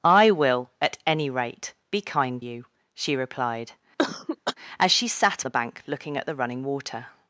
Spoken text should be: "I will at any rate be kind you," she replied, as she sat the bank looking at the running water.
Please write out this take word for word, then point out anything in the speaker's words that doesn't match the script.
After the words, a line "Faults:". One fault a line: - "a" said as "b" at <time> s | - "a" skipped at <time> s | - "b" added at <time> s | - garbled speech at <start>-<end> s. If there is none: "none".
"I will at any rate be kind you," she replied, as she sat the bank looking at the running water.
Faults:
none